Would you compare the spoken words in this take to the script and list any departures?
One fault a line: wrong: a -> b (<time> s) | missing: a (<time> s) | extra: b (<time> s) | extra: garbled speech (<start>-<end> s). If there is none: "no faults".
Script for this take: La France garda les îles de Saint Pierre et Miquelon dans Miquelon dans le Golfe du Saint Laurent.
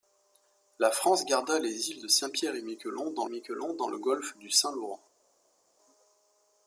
no faults